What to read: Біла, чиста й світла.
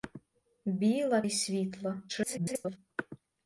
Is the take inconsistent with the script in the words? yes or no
yes